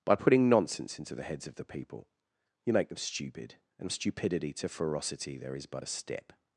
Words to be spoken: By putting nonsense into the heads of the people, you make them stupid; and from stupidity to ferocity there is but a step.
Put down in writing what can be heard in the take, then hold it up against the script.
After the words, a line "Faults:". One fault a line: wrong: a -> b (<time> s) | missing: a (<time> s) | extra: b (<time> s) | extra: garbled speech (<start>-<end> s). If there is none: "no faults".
By putting nonsense into the heads of the people, you make them stupid; and stupidity to ferocity there is but a step.
Faults:
missing: from (3.9 s)